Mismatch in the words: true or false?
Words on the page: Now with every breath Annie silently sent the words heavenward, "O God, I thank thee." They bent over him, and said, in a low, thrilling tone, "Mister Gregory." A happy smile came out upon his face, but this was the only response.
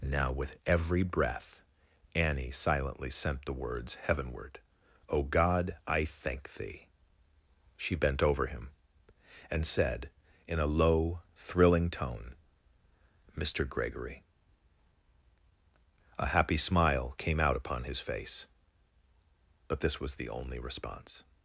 true